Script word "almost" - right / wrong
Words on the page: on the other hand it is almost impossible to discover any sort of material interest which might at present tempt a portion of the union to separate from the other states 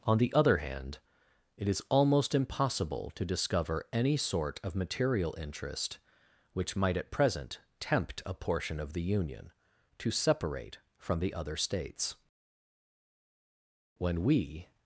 right